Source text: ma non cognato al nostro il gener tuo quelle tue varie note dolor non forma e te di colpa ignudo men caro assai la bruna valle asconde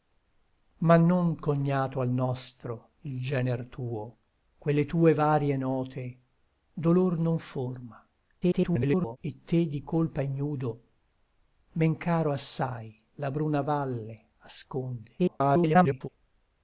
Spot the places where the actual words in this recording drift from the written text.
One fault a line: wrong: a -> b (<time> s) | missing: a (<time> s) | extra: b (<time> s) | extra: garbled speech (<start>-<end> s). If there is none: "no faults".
extra: garbled speech (8.4-9.2 s)
extra: garbled speech (15.2-16.1 s)